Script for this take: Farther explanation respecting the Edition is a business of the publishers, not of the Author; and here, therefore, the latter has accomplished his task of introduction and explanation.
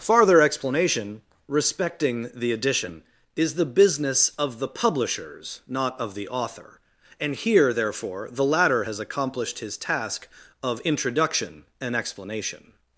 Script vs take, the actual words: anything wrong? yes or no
yes